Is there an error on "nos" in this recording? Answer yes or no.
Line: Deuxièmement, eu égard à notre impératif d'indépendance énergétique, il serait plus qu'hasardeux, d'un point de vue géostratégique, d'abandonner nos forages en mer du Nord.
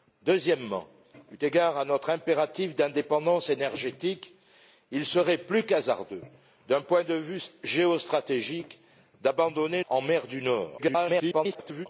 yes